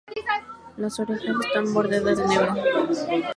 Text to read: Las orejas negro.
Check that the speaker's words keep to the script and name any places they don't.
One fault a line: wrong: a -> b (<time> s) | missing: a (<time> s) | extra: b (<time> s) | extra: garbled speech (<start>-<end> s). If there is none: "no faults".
extra: están bordeadas de (1.4 s)